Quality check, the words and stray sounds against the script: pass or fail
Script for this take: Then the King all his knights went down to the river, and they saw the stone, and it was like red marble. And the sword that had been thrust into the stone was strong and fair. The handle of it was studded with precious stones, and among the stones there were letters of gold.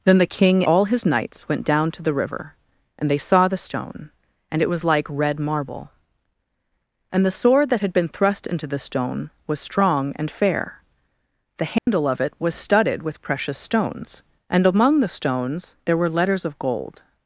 fail